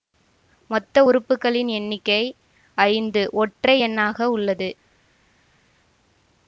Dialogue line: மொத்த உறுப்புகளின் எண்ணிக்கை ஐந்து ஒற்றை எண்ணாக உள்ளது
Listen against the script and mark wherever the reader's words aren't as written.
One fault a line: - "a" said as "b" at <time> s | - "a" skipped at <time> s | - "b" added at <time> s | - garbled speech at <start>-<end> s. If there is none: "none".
none